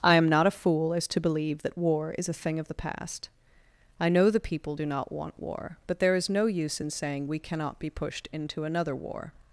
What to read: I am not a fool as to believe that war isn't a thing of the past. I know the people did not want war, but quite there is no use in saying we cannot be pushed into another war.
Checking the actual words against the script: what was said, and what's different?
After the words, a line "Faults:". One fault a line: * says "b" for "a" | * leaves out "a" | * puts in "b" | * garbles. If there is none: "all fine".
I am not a fool as to believe that war is a thing of the past. I know the people do not want war, but there is no use in saying we cannot be pushed into another war.
Faults:
* says "is" for "isn't"
* says "do" for "did"
* leaves out "quite"